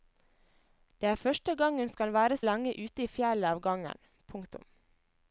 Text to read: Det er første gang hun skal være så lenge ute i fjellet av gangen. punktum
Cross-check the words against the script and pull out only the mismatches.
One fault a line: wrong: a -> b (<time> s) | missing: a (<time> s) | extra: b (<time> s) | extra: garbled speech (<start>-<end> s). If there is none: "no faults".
missing: så (2.4 s)